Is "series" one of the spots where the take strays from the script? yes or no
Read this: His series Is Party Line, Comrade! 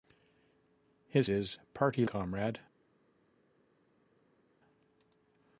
yes